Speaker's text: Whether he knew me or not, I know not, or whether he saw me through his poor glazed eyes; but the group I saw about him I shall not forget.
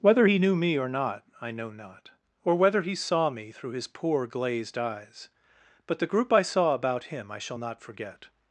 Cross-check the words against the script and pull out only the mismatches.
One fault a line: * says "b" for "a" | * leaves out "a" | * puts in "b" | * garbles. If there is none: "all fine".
all fine